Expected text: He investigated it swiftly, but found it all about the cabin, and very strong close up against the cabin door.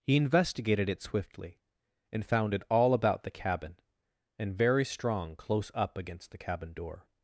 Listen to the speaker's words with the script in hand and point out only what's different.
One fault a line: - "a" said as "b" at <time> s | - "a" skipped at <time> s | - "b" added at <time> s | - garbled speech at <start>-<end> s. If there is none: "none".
- "but" said as "and" at 2.1 s